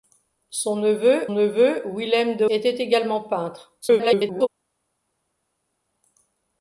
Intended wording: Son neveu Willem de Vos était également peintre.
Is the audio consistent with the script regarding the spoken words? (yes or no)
no